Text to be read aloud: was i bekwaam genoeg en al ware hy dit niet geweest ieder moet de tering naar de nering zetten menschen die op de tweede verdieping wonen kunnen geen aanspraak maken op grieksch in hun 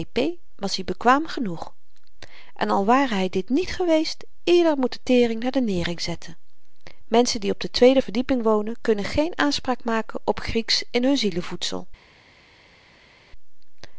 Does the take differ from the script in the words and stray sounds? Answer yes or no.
no